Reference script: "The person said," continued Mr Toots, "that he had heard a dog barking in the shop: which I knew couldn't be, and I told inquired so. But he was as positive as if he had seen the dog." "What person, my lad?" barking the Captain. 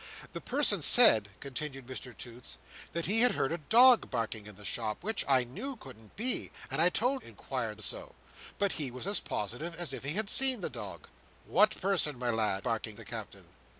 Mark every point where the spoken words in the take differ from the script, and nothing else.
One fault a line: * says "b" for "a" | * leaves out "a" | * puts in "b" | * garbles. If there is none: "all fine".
all fine